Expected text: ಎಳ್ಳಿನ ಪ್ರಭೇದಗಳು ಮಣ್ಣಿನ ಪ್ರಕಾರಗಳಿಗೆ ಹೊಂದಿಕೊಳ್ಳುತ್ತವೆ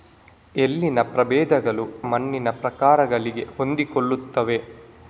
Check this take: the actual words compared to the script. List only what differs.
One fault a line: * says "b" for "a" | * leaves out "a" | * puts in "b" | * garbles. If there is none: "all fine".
all fine